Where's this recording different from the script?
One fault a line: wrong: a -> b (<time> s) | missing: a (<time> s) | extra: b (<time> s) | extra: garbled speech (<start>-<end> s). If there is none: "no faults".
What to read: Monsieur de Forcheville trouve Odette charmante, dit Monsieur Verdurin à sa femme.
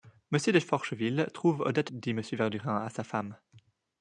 missing: charmante (1.9 s)